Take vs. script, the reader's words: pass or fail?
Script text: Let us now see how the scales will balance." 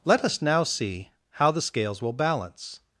pass